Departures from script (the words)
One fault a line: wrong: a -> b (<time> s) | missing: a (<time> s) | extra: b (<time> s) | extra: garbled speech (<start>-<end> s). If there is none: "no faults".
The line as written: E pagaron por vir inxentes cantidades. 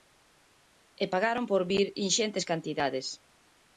no faults